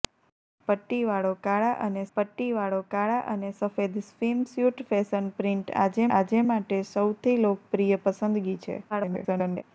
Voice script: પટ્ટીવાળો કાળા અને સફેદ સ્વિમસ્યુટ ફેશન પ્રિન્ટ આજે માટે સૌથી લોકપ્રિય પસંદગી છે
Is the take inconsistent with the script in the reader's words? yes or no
yes